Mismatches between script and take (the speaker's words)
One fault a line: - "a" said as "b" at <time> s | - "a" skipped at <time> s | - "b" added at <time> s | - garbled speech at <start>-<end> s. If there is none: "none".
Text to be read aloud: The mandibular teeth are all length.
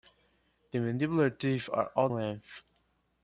none